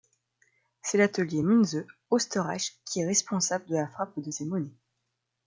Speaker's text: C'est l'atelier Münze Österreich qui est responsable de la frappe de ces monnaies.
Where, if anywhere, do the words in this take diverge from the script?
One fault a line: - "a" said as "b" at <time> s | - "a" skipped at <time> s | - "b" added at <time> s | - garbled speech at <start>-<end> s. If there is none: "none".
none